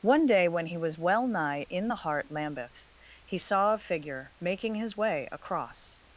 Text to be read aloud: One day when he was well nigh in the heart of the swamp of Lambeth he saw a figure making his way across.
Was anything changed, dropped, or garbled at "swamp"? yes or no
yes